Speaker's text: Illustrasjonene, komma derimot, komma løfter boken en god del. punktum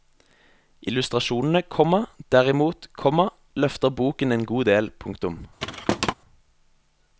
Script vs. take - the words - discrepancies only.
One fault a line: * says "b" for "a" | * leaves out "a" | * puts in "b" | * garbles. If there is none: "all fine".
all fine